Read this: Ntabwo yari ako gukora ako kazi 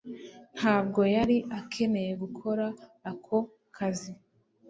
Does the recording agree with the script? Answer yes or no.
no